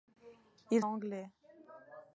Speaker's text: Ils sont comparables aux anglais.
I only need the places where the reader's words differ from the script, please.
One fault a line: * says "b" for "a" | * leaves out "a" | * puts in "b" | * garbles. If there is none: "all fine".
* leaves out "sont comparables aux"